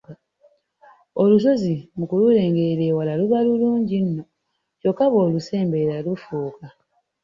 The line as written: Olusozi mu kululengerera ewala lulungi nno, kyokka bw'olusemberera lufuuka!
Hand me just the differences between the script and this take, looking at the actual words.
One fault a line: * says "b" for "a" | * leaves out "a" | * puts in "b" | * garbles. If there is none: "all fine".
* puts in "luba"